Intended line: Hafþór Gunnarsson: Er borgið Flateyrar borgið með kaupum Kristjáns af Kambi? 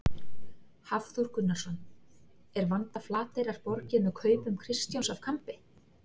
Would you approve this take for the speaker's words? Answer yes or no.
no